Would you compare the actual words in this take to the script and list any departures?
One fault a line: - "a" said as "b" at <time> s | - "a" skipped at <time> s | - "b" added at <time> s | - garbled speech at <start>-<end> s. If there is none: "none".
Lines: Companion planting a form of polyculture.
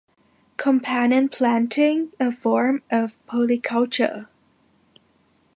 none